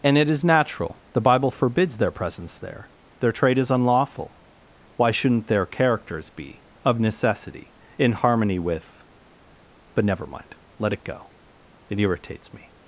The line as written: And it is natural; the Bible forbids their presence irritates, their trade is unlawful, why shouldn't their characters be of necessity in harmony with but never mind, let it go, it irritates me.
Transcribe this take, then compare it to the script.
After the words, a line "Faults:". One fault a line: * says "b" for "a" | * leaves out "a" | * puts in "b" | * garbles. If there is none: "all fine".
And it is natural; the Bible forbids their presence there, their trade is unlawful, why shouldn't their characters be of necessity in harmony with but never mind, let it go, it irritates me.
Faults:
* says "there" for "irritates"